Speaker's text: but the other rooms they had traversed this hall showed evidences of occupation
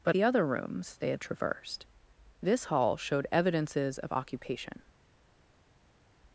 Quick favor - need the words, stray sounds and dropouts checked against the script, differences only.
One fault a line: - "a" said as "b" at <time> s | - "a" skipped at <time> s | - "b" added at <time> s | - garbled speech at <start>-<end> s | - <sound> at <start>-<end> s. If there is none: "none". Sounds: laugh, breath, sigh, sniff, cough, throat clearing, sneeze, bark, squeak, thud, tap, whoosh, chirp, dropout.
none